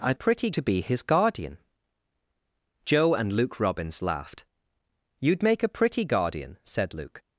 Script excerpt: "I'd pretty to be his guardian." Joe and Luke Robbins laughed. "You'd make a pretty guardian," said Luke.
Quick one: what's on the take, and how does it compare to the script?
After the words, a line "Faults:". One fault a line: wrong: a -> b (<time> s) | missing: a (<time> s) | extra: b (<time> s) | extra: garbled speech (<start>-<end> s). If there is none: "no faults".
"I'd pretty to be his guardian." Joe and Luke Robbins laughed. "You'd make a pretty guardian," said Luke.
Faults:
no faults